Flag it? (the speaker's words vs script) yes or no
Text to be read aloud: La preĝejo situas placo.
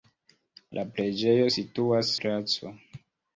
no